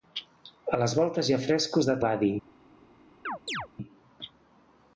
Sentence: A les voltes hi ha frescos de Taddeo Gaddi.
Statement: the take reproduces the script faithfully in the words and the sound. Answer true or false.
false